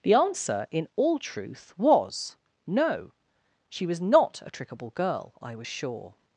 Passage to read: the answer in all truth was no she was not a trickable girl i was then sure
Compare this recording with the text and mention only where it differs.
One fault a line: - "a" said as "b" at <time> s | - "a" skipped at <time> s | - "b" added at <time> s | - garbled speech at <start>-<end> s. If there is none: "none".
- "then" skipped at 5.7 s